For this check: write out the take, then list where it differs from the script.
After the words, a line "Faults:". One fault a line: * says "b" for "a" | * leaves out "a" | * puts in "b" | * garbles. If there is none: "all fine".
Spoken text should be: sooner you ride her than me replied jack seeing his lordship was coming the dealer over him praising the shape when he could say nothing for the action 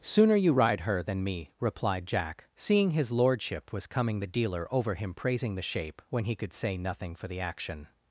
sooner you ride her than me replied jack seeing his lordship was coming the dealer over him praising the shape when he could say nothing for the action
Faults:
all fine